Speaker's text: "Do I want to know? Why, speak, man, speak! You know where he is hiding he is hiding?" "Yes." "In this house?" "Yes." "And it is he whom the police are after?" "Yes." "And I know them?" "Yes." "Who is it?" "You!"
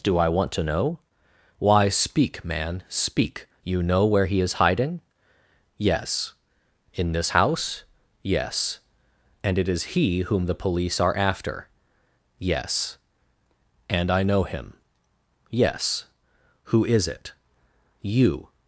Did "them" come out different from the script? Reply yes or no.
yes